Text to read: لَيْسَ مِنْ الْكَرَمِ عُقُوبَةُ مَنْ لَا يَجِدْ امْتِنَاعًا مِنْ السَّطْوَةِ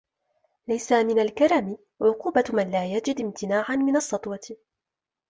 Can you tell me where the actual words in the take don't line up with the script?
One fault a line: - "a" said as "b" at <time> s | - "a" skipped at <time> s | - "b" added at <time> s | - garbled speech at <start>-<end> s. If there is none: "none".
none